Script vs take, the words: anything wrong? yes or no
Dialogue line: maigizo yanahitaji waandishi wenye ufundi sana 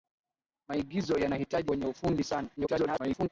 yes